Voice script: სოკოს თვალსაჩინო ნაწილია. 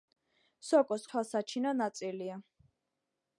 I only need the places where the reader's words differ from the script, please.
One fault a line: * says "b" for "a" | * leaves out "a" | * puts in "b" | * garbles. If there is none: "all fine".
all fine